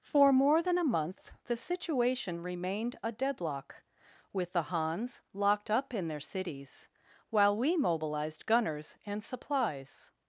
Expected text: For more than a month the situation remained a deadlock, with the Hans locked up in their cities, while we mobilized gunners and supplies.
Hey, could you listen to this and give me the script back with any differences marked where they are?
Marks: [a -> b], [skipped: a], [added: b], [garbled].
For more than a month the situation remained a deadlock, with the Hans locked up in their cities, while we mobilized gunners and supplies.